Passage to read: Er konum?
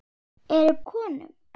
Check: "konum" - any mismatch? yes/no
no